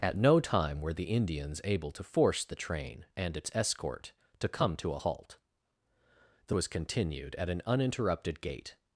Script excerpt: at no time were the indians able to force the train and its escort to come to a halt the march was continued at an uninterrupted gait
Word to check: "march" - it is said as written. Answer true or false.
false